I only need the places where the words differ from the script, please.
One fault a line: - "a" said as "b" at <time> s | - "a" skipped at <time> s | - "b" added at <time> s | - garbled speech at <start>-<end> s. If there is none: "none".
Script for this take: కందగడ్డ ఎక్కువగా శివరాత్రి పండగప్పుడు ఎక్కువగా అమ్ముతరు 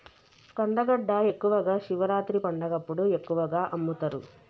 none